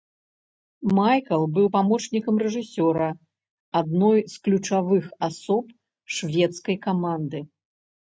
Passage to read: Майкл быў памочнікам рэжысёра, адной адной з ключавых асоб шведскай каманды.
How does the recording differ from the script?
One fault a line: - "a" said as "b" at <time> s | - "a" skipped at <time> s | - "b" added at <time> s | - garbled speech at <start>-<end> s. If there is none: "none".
- "адной" skipped at 4.2 s